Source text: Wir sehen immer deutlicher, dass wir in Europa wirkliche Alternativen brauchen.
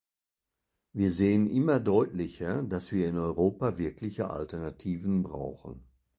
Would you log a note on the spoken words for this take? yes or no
no